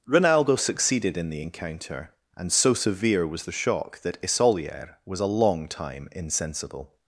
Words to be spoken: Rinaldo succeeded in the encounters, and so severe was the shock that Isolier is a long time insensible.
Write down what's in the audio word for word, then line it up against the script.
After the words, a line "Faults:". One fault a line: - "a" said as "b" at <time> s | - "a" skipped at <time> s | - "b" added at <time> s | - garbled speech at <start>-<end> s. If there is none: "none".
Rinaldo succeeded in the encounter, and so severe was the shock that Isolier was a long time insensible.
Faults:
- "encounters" said as "encounter" at 1.4 s
- "is" said as "was" at 5.0 s